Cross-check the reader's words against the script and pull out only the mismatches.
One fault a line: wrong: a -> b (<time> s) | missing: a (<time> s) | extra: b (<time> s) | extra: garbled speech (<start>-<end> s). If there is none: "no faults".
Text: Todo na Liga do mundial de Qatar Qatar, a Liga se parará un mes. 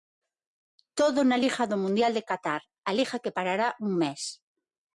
missing: Qatar (2.6 s)
wrong: se -> que (3.2 s)